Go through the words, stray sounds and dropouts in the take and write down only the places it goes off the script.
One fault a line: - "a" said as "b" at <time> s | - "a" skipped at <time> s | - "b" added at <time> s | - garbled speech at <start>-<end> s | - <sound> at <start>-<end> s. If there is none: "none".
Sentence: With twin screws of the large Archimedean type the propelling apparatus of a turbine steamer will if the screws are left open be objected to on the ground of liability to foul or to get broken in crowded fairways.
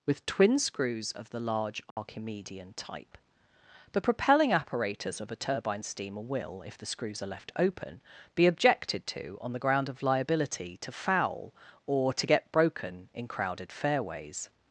- dropout at 1.9-2.0 s